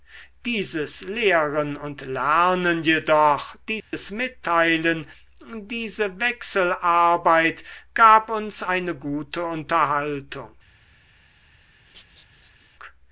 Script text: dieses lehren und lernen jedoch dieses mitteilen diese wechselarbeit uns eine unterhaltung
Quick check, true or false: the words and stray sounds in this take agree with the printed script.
false